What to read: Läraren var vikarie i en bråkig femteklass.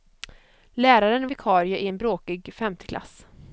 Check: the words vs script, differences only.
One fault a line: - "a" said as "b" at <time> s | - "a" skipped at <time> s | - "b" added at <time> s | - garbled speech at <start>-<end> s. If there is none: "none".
- "var" skipped at 1.3 s